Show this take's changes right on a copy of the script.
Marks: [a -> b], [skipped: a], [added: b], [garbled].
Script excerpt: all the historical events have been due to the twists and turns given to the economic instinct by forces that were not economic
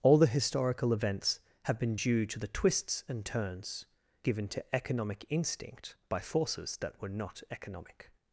all the historical events have been due to the twists and turns given to [skipped: the] economic instinct by forces that were not economic